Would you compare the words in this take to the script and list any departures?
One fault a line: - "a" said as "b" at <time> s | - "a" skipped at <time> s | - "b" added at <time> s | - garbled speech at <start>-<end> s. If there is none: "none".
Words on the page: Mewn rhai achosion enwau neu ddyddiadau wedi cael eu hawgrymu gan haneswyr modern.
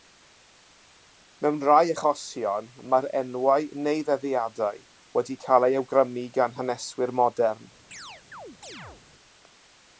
- "mae'r" added at 2.9 s